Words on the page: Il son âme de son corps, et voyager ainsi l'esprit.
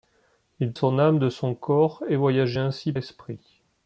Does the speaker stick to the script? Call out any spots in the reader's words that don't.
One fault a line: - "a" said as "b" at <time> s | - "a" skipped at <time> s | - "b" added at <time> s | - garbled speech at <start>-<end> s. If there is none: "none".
none